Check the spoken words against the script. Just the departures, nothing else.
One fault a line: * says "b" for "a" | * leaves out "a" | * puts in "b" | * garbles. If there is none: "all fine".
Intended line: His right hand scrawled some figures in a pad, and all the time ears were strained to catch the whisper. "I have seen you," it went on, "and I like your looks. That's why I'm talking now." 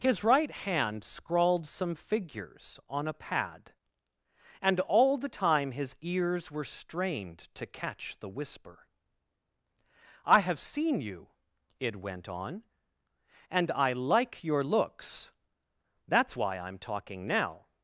* says "on" for "in"
* puts in "his"